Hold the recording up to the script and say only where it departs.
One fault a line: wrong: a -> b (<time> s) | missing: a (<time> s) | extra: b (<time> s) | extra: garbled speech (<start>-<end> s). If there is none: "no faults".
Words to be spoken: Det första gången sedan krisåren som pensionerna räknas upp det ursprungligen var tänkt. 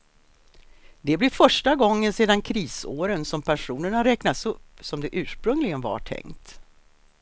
extra: blir (1.2 s)
extra: som (4.8 s)